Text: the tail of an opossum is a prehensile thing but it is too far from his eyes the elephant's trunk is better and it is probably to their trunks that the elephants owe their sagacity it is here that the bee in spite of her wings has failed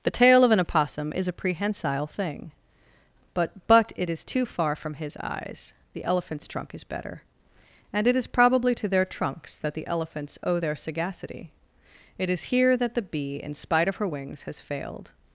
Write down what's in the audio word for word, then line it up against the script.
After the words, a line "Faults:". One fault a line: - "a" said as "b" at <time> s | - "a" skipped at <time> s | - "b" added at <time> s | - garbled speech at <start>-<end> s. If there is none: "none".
the tail of an opossum is a prehensile thing but but it is too far from his eyes the elephant's trunk is better and it is probably to their trunks that the elephants owe their sagacity it is here that the bee in spite of her wings has failed
Faults:
- "but" added at 3.7 s